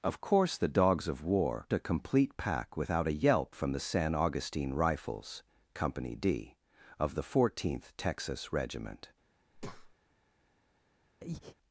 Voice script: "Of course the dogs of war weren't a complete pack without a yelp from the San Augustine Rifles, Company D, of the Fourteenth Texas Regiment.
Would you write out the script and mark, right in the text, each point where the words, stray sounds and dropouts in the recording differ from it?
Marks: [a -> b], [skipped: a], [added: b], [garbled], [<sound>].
"Of course the dogs of war [skipped: weren't] a complete pack without a yelp from the San Augustine Rifles, Company D, of the Fourteenth Texas Regiment. [breath] [breath]